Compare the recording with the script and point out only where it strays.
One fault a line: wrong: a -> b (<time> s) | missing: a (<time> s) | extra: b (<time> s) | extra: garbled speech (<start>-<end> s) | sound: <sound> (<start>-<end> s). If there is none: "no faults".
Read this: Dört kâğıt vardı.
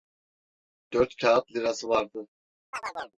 extra: lirası (1.5 s)
sound: chirp (2.7-3.2 s)